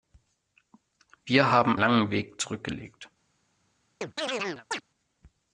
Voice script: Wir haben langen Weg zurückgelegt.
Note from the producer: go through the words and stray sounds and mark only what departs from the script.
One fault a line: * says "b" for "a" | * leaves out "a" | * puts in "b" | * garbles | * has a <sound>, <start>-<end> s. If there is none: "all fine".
* has a chirp, 4.0-4.8 s